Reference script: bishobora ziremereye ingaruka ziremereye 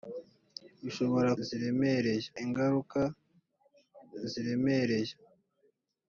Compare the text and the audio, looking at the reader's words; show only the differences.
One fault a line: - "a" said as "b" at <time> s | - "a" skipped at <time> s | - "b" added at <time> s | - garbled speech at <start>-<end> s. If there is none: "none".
none